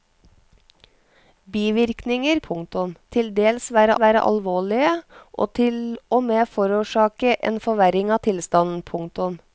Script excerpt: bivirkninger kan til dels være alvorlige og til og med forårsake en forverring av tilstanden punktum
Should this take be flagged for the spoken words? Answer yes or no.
yes